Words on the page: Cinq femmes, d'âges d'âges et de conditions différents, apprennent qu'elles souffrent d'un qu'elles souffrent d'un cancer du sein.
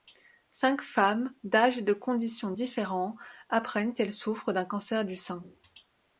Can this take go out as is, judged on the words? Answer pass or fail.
fail